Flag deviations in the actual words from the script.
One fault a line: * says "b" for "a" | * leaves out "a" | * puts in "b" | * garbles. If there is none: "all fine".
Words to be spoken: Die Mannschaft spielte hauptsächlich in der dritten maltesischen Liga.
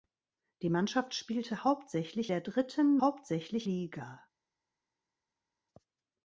* leaves out "in"
* says "hauptsächlich" for "maltesischen"